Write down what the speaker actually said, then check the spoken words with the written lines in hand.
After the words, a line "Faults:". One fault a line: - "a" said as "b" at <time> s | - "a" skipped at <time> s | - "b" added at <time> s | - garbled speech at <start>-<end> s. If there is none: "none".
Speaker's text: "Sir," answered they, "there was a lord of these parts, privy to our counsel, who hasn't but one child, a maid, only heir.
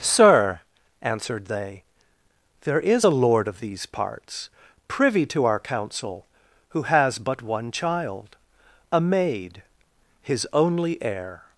"Sir," answered they, "there is a lord of these parts, privy to our counsel, who has but one child, a maid, his only heir.
Faults:
- "was" said as "is" at 2.8 s
- "hasn't" said as "has" at 6.8 s
- "his" added at 10.2 s